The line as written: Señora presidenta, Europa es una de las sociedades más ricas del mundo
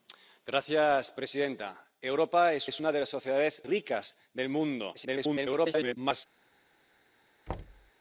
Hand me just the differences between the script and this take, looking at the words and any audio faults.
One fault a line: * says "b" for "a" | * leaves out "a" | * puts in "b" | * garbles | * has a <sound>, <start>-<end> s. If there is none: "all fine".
* puts in "es"
* leaves out "más"
* garbles
* has a thud, 7.5-7.9 s